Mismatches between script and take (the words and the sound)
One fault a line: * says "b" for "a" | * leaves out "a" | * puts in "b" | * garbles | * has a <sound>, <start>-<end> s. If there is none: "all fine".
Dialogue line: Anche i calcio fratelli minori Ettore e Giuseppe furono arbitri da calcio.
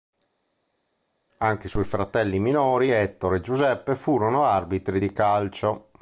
* says "suoi" for "calcio"
* says "di" for "da"